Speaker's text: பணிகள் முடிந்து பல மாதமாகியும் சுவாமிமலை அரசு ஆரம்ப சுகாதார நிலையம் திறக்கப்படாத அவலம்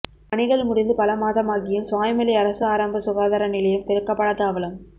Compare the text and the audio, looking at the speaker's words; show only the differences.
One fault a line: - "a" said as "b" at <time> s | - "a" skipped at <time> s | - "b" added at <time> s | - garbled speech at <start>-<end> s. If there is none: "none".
none